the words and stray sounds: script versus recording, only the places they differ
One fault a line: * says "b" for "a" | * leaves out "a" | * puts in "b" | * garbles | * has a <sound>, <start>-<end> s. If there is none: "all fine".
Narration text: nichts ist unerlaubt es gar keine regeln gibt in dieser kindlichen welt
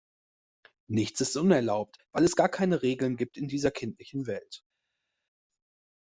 * puts in "weil"